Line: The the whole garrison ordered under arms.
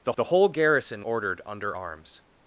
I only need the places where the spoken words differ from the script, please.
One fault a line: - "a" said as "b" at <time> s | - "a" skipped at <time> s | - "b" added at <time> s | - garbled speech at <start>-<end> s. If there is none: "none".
none